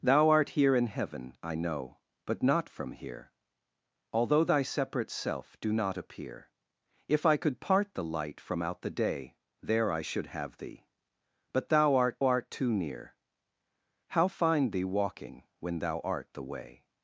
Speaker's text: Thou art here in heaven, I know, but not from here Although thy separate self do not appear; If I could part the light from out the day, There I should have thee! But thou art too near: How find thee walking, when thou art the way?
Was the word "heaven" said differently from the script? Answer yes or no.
no